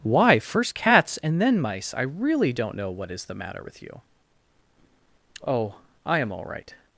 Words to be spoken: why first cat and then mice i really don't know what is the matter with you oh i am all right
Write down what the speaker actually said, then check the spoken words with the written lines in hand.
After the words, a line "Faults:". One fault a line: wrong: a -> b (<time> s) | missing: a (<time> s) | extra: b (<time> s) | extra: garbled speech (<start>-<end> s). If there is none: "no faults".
why first cats and then mice i really don't know what is the matter with you oh i am all right
Faults:
wrong: cat -> cats (0.8 s)